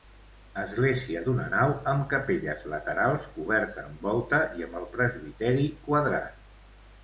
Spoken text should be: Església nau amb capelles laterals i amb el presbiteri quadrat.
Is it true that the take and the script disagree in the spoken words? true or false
true